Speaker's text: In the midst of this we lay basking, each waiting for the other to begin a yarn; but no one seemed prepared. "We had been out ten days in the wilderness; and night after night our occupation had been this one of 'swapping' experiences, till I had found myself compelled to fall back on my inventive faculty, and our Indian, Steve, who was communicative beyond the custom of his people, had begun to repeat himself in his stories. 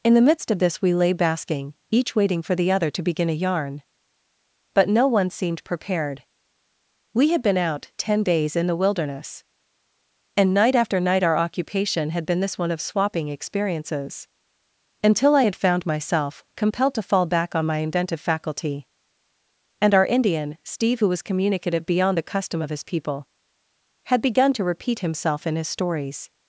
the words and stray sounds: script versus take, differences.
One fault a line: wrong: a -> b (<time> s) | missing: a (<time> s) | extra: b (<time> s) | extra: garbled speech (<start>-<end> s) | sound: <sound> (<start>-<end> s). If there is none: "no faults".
wrong: till -> until (15.0 s)